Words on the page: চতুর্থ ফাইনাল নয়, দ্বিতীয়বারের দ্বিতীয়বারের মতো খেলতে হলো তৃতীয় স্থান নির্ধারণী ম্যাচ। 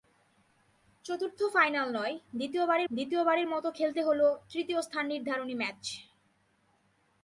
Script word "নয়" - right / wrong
right